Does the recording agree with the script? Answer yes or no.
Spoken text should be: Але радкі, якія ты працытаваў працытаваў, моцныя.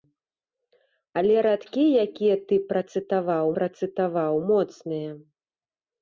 yes